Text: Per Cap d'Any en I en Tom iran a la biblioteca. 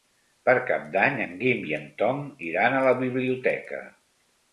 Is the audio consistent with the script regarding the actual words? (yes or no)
no